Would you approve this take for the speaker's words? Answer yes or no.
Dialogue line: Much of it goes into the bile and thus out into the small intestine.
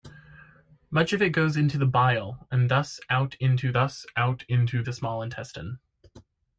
no